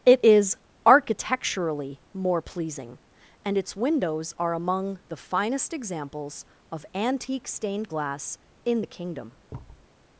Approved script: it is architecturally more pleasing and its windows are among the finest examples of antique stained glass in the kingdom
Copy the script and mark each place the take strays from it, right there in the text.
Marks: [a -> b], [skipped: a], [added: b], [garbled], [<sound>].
it is architecturally more pleasing and its windows are among the finest examples of antique stained glass in the kingdom [thud]